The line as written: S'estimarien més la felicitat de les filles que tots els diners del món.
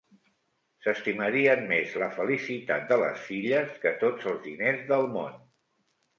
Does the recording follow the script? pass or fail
pass